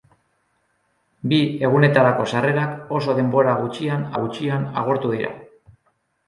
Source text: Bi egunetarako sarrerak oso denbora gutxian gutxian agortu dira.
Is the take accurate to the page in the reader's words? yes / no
yes